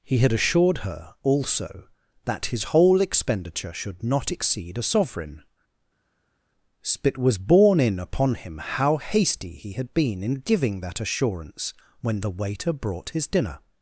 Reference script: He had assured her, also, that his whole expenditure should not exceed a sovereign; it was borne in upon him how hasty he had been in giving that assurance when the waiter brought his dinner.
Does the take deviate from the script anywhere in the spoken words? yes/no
no